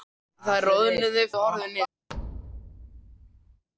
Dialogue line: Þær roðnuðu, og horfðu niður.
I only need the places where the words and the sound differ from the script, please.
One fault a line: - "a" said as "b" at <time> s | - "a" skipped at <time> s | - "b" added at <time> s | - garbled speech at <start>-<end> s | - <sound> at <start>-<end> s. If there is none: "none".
- thud at 2.1-3.6 s